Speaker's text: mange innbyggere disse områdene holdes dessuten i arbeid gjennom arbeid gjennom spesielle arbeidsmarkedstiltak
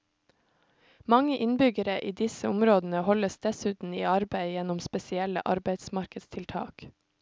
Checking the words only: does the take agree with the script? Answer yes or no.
no